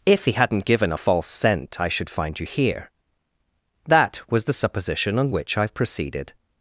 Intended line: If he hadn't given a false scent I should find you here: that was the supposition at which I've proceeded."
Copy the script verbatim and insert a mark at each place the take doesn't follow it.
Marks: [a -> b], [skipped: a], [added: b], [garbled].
If he hadn't given a false scent I should find you here: that was the supposition [at -> on] which I've proceeded."